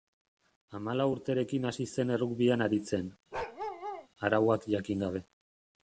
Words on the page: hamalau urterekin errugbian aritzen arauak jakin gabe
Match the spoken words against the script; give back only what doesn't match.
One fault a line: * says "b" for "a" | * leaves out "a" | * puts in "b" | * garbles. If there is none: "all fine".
* puts in "hasi zen"